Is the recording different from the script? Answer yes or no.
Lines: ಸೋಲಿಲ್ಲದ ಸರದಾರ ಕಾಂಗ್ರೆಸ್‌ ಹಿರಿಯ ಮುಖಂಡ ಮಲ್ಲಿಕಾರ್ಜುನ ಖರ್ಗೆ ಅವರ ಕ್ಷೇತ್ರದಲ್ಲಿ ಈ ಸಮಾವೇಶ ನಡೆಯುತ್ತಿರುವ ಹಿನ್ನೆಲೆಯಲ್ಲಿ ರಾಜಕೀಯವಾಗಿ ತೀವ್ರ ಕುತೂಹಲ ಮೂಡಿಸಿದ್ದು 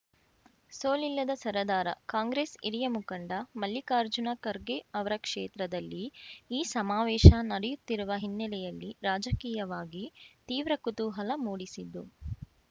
no